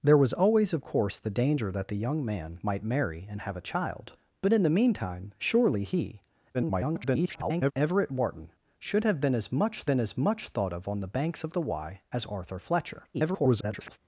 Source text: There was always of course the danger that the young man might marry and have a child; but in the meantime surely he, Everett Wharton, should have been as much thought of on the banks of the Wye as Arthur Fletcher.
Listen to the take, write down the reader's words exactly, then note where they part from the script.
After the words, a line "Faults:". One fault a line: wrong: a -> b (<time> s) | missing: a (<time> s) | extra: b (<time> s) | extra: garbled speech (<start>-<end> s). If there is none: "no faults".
There was always of course the danger that the young man might marry and have a child; but in the meantime surely he, [garbled] Everett Wharton, should have been as much been as much thought of on the banks of the Wye as Arthur Fletcher. [garbled]
Faults:
extra: garbled speech (6.5-7.7 s)
extra: been as much (9.8 s)
extra: garbled speech (13.1-14.0 s)